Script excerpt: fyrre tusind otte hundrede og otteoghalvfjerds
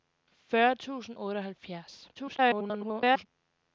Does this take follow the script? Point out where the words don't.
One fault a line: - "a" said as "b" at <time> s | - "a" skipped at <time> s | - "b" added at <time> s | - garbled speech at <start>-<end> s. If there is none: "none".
- "otte hundrede" skipped at 1.2 s
- garbled speech at 2.2-3.3 s